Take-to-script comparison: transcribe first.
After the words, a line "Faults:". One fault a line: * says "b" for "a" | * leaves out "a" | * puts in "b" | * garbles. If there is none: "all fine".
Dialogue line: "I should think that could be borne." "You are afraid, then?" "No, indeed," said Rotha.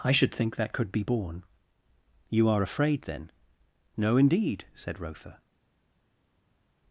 "I should think that could be borne." "You are afraid, then?" "No, indeed," said Rotha.
Faults:
all fine